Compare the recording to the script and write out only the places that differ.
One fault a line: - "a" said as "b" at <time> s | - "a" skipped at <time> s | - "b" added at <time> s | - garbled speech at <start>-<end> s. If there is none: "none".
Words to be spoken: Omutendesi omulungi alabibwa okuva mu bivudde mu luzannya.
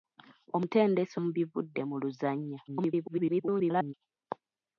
- "omulungi alabibwa okuva" skipped at 1.1 s
- garbled speech at 2.7-3.9 s